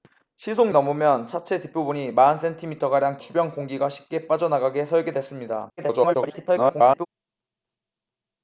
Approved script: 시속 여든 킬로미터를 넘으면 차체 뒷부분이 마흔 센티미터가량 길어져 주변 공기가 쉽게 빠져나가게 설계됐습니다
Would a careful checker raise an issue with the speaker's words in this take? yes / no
yes